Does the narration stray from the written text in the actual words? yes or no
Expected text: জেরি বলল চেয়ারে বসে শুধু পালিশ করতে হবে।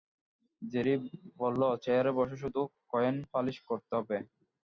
yes